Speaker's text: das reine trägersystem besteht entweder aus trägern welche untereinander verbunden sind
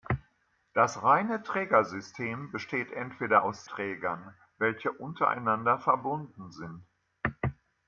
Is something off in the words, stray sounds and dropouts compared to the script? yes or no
no